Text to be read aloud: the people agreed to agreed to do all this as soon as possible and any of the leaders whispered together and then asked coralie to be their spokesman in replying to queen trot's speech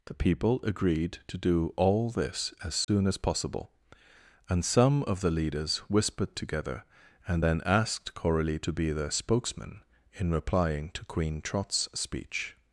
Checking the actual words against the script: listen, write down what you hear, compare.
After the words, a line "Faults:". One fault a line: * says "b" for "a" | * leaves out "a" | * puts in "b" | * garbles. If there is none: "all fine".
the people agreed to do all this as soon as possible and some of the leaders whispered together and then asked coralie to be their spokesman in replying to queen trot's speech
Faults:
* leaves out "agreed to"
* says "some" for "any"